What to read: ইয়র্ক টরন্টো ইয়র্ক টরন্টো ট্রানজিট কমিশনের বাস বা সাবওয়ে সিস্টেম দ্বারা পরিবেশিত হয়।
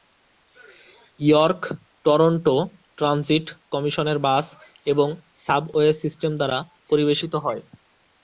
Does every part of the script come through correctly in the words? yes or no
no